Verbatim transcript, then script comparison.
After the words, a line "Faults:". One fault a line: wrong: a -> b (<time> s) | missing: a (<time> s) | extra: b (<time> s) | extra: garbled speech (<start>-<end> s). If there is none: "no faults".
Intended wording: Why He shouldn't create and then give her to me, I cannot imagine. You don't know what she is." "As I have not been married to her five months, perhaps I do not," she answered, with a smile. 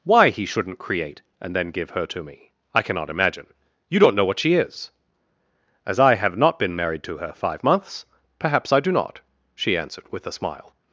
Why He shouldn't create and then give her to me, I cannot imagine. You don't know what she is." "As I have not been married to her five months, perhaps I do not," she answered, with a smile.
Faults:
no faults